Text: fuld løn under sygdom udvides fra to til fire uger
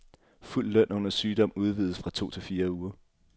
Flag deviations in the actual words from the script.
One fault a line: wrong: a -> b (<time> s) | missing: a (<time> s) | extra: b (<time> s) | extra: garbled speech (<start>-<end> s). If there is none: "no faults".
no faults